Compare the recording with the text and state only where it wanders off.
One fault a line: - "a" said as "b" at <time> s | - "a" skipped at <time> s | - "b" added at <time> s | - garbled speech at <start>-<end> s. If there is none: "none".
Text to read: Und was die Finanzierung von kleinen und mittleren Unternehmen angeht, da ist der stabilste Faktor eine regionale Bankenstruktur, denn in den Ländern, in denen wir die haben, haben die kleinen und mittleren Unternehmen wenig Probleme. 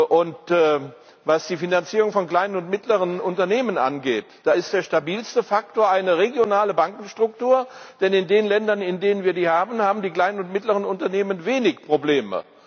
none